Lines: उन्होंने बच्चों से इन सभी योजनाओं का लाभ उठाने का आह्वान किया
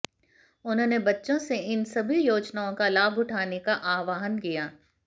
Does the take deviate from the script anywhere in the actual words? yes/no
no